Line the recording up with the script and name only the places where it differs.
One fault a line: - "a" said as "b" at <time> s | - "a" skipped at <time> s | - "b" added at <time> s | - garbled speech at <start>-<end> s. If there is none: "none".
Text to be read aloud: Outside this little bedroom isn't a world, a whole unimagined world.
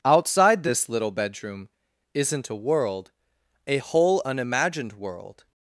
none